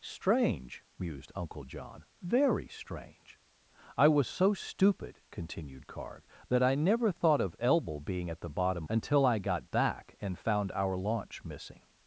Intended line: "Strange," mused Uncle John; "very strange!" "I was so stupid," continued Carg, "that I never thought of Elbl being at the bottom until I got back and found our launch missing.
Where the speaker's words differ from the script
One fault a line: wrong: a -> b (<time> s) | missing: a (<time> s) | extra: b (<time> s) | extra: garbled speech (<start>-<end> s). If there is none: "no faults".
no faults